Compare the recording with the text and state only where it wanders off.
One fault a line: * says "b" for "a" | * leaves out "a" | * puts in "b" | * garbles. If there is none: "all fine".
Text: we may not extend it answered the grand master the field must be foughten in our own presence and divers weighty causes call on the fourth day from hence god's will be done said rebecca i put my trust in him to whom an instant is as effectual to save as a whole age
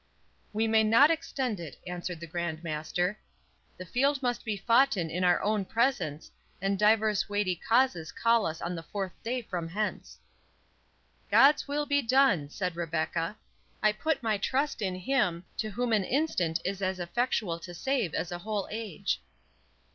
* puts in "us"